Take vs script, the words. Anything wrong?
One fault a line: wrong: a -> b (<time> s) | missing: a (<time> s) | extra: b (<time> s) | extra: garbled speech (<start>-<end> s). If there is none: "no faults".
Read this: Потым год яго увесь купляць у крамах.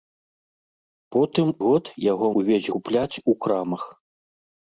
no faults